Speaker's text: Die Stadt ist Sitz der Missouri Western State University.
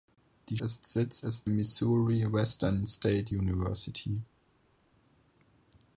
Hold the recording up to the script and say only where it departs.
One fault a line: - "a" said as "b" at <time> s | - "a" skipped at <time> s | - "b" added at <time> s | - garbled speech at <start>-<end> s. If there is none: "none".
- "Stadt" skipped at 0.6 s
- "der" said as "ist" at 1.2 s